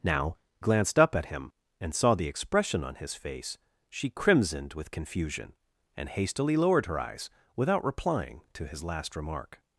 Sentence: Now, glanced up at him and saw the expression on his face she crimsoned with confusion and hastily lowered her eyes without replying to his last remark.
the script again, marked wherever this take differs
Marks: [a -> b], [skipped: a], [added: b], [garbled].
Now, glanced up at him and saw the expression on his face she crimsoned with confusion and hastily lowered her eyes without replying to his last remark.